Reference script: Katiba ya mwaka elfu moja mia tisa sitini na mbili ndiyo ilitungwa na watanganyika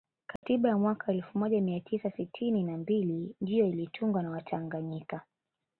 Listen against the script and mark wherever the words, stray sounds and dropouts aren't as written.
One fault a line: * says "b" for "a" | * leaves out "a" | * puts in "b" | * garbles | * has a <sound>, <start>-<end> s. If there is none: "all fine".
* has a dropout, 0.4-0.4 s